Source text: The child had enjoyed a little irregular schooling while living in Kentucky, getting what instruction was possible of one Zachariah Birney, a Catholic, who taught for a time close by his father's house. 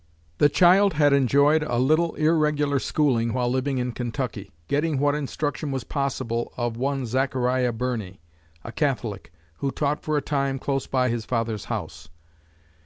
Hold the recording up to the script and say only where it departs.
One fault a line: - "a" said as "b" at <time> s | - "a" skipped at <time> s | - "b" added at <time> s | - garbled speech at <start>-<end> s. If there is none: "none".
none